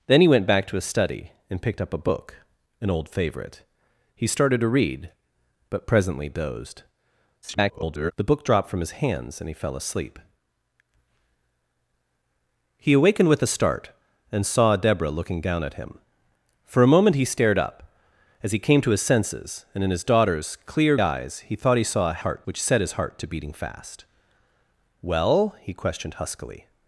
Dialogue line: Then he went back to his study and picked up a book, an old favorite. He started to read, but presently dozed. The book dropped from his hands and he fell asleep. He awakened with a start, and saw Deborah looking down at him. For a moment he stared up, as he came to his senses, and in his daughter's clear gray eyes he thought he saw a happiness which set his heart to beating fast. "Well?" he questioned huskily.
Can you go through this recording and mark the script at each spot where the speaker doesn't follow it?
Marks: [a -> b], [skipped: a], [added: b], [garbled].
Then he went back to his study and picked up a book, an old favorite. He started to read, but presently dozed. [garbled] The book dropped from his hands and he fell asleep. He awakened with a start, and saw Deborah looking down at him. For a moment he stared up, as he came to his senses, and in his daughter's clear [skipped: gray] eyes he thought he saw a [happiness -> heart] which set his heart to beating fast. "Well?" he questioned huskily.